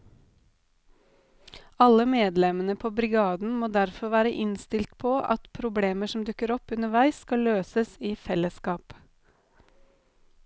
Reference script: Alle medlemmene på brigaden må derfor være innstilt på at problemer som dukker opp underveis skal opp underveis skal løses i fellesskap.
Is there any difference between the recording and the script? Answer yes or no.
yes